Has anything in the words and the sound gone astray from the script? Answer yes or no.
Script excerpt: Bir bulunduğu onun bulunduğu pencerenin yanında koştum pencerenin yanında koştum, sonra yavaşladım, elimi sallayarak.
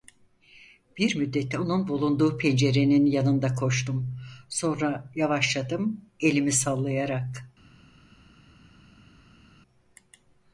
yes